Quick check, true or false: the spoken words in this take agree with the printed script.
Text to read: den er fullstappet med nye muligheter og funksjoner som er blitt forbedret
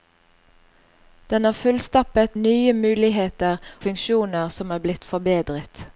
false